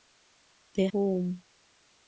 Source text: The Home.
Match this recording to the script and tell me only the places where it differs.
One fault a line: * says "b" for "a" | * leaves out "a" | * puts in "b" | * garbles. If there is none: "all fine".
all fine